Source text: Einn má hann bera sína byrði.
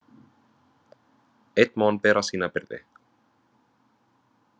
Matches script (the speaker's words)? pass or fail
pass